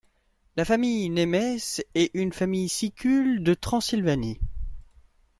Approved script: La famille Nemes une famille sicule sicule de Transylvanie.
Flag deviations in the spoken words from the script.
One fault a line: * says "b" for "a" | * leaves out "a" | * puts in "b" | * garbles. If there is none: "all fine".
* puts in "est"
* leaves out "sicule"